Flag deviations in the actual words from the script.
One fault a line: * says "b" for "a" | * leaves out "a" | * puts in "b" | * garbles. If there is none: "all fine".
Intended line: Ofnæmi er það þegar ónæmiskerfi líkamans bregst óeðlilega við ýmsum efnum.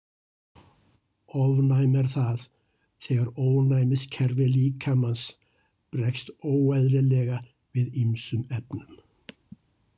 all fine